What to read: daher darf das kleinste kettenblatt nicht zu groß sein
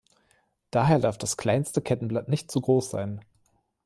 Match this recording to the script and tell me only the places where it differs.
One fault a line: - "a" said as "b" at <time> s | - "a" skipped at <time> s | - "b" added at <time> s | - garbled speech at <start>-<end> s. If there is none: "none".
none